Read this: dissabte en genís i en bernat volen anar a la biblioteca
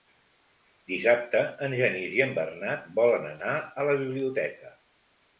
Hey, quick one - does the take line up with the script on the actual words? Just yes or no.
yes